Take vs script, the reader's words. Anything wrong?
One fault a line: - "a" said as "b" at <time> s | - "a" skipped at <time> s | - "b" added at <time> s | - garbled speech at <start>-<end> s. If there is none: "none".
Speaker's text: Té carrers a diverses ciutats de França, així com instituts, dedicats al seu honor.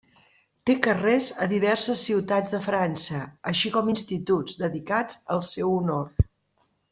none